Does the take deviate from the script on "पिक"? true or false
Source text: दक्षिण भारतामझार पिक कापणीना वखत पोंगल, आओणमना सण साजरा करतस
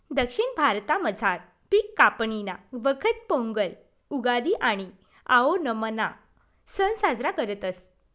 false